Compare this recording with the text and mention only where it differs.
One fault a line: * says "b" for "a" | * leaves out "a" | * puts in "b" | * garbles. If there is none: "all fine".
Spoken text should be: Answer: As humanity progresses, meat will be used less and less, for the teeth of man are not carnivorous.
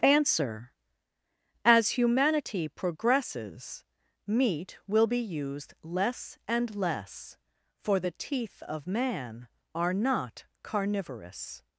all fine